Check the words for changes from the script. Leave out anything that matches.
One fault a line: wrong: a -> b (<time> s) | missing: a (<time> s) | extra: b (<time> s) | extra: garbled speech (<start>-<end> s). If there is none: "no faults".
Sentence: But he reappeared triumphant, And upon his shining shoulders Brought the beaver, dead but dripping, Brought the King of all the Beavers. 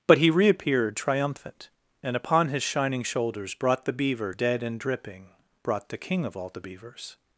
wrong: but -> and (4.6 s)